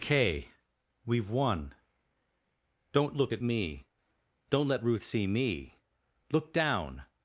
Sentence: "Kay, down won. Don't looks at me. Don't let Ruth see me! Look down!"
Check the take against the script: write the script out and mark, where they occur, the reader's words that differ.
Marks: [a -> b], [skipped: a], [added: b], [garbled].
"Kay, [down -> we've] won. Don't [looks -> look] at me. Don't let Ruth see me! Look down!"